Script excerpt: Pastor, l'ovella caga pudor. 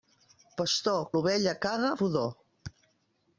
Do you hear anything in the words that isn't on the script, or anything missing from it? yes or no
no